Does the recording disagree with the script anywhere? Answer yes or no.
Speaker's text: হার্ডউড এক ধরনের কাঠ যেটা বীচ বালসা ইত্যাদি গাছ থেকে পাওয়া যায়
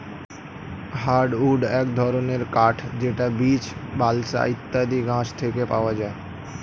no